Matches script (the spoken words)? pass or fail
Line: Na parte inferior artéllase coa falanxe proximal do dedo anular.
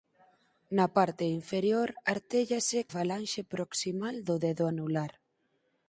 fail